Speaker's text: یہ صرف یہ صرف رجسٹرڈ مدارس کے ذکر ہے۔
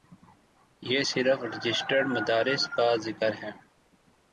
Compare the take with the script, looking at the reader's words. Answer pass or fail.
fail